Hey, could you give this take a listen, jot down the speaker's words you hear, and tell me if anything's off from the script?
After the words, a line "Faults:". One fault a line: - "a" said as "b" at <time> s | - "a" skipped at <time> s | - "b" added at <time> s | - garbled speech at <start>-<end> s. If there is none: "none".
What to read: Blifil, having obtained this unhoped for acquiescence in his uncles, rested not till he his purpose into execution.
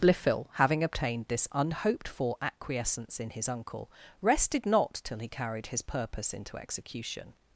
Blifil, having obtained this unhoped for acquiescence in his uncle, rested not till he carried his purpose into execution.
Faults:
- "uncles" said as "uncle" at 3.5 s
- "carried" added at 5.3 s